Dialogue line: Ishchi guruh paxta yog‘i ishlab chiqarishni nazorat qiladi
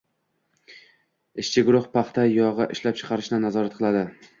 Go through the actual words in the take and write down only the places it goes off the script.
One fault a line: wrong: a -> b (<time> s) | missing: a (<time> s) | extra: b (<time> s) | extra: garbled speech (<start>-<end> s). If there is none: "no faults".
no faults